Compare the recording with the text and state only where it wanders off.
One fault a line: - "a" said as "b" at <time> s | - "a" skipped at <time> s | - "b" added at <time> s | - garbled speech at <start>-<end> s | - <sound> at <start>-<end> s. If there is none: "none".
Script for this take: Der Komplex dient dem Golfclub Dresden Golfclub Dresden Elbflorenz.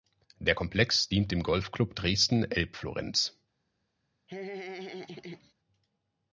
- "Golfclub Dresden" skipped at 2.4 s
- laugh at 4.3-5.5 s